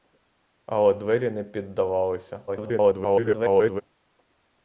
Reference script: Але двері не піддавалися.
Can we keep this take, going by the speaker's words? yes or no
no